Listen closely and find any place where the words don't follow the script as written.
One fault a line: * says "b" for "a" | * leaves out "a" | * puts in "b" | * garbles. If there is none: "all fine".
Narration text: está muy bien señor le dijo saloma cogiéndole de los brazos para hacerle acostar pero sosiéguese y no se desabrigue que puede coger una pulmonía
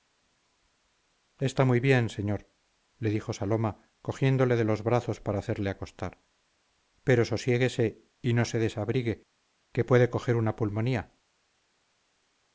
all fine